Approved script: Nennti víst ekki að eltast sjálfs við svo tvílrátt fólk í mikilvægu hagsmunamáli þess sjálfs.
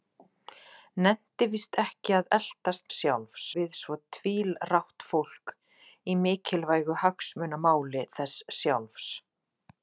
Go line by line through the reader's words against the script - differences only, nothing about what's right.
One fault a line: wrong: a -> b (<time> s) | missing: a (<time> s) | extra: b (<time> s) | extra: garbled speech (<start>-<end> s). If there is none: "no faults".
no faults